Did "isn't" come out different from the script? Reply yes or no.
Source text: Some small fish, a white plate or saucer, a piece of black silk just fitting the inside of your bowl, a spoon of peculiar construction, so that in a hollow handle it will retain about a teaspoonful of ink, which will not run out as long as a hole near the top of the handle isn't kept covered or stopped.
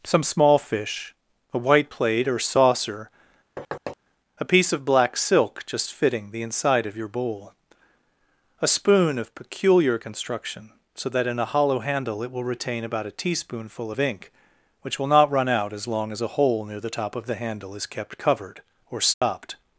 yes